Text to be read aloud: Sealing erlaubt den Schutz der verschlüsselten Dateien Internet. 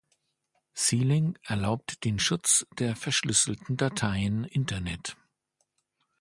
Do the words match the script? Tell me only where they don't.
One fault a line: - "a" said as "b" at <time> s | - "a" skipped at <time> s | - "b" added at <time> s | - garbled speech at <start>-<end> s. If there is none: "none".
none